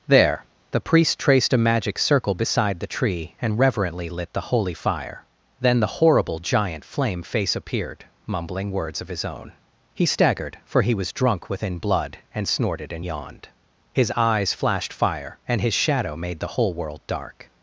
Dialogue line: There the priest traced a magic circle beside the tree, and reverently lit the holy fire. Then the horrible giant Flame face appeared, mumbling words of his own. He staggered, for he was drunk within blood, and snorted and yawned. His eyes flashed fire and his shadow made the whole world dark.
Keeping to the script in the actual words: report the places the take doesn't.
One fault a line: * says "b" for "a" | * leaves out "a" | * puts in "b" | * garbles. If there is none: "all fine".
all fine